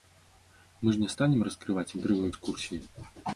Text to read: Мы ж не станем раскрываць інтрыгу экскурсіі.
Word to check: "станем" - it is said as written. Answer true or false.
true